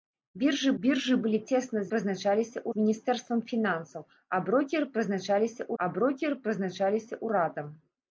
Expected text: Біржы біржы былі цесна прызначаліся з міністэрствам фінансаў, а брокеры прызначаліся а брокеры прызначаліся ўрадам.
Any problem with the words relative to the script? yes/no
no